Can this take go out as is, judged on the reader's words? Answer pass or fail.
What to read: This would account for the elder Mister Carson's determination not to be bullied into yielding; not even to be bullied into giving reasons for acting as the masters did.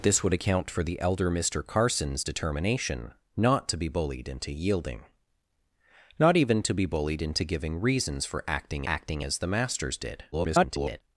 fail